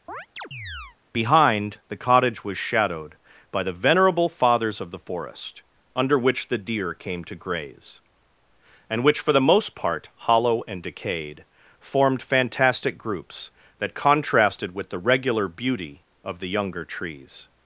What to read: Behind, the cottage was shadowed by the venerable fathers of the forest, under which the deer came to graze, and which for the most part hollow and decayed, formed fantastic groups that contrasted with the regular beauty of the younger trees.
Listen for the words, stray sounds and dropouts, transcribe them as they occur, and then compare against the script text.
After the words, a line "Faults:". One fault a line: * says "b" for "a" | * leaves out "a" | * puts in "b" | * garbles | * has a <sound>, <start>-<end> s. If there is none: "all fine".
Behind, the cottage was shadowed by the venerable fathers of the forest, under which the deer came to graze, and which for the most part hollow and decayed, formed fantastic groups that contrasted with the regular beauty of the younger trees.
Faults:
* has a chirp, 0.1-1.0 s